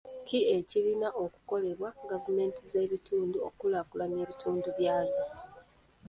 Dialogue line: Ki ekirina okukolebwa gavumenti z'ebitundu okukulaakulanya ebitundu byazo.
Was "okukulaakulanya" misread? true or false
false